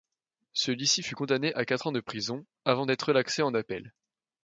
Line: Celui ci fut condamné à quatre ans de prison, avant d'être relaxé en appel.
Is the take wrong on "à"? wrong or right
right